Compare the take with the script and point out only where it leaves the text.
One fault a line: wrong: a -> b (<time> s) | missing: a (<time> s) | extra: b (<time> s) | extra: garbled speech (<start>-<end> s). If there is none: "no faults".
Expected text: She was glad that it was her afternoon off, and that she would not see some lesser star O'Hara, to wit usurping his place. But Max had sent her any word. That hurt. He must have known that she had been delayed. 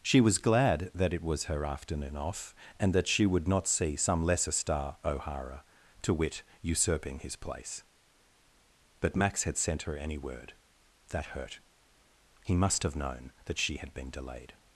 no faults